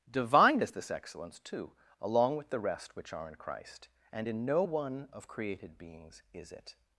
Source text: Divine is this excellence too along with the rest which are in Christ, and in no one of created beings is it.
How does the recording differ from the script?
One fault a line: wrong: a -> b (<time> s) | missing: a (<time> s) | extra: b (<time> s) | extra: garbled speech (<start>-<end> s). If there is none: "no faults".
no faults